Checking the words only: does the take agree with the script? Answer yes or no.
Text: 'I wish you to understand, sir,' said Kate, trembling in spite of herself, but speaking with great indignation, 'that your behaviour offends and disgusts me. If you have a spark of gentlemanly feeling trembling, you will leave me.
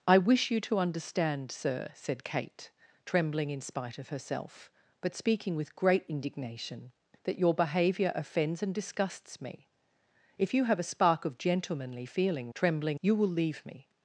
yes